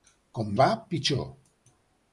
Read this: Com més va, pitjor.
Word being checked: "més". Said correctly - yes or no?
no